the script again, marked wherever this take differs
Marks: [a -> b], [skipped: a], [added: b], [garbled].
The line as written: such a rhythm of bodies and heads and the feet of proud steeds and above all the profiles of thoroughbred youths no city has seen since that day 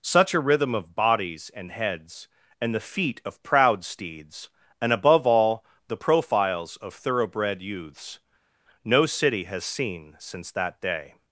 such a rhythm of bodies and heads and the feet of proud steeds and above all the profiles of thoroughbred youths no city has seen since that day